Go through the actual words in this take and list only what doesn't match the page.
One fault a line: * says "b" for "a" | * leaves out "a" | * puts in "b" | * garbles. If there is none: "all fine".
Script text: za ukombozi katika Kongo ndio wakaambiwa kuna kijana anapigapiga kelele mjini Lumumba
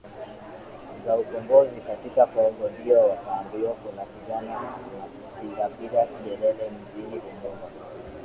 all fine